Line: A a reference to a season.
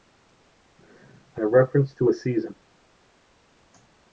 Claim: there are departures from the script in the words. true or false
false